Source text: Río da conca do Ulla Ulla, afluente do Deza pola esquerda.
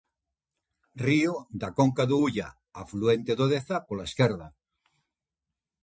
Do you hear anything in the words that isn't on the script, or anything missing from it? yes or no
yes